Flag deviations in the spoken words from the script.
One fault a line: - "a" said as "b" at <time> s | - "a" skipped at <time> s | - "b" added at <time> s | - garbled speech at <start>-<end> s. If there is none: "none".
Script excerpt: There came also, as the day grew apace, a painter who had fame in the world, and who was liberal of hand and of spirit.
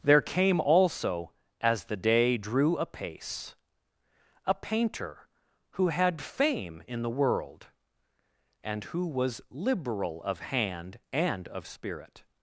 - "grew" said as "drew" at 2.4 s